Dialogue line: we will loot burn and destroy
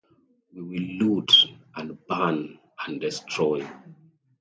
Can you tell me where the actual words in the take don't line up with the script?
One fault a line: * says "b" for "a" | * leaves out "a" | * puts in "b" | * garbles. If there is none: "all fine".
* puts in "and"